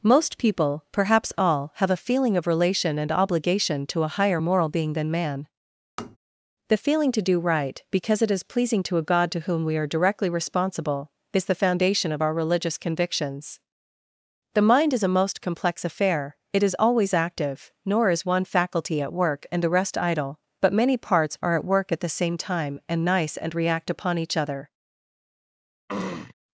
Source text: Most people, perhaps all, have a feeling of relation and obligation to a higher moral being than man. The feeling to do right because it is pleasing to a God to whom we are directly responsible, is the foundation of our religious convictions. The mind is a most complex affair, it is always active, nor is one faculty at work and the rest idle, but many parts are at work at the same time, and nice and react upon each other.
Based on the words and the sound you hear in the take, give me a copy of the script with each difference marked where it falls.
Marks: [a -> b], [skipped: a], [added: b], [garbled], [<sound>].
Most people, perhaps all, have a feeling of relation and obligation to a higher moral being than man. [tap] The feeling to do right because it is pleasing to a God to whom we are directly responsible, is the foundation of our religious convictions. The mind is a most complex affair, it is always active, nor is one faculty at work and the rest idle, but many parts are at work at the same time, and nice and react upon each other. [throat clearing]